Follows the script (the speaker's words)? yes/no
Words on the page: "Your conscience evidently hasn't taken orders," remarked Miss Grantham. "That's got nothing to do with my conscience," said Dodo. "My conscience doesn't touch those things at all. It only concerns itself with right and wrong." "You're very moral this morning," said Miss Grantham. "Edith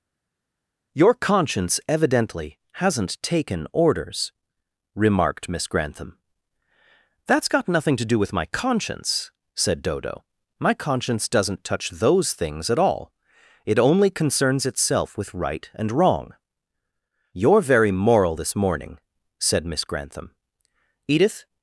yes